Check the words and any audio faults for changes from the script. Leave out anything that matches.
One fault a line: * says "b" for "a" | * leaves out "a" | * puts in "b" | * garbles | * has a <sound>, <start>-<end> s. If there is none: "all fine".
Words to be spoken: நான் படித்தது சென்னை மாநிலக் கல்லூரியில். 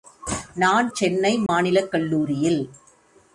* leaves out "படித்தது"
* has a dropout, 1.5-1.5 s